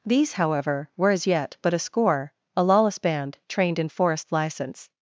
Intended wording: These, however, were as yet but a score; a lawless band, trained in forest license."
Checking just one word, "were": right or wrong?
right